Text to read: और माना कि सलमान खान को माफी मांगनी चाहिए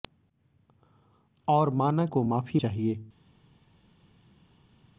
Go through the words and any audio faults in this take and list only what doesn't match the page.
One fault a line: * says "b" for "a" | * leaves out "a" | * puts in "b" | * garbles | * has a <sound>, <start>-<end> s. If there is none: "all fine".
* leaves out "कि सलमान खान"
* leaves out "मांगनी"